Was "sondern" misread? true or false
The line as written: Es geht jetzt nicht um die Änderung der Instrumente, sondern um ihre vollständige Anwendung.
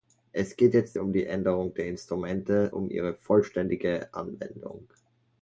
true